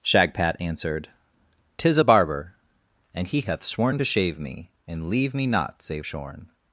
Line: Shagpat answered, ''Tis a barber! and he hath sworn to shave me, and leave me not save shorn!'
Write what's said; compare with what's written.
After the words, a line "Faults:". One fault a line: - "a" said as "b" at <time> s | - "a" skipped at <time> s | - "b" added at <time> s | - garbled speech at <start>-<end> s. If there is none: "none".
Shagpat answered, ''Tis a barber! and he hath sworn to shave me, and leave me not save shorn!'
Faults:
none